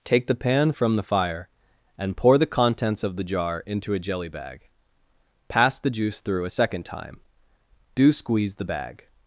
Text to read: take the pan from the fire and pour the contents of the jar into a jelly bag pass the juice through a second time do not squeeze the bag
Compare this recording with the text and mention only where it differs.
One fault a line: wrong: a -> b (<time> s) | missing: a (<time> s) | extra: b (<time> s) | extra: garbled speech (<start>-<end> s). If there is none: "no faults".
missing: not (8.1 s)